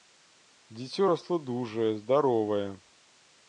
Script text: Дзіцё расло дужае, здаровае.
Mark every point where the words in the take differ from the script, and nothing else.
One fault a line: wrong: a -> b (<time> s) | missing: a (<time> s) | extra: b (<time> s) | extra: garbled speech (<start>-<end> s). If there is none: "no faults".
no faults